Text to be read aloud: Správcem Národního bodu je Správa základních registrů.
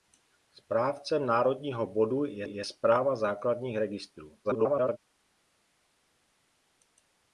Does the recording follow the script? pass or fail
fail